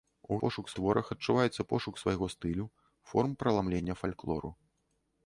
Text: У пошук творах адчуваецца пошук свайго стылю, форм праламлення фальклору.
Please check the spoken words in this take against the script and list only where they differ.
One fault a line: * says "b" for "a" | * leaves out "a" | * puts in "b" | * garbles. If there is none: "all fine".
all fine